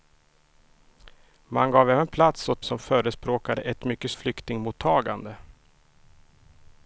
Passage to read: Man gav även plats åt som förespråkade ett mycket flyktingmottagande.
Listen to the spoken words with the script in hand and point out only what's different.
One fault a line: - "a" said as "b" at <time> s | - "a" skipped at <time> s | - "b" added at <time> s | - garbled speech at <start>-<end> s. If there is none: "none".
none